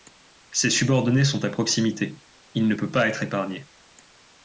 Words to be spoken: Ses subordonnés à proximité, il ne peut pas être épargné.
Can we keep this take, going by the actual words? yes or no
no